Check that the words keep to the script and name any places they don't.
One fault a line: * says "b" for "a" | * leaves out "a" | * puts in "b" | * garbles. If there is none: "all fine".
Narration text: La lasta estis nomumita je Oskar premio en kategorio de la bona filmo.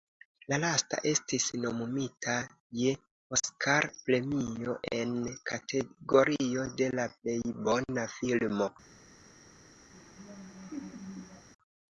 * puts in "plej"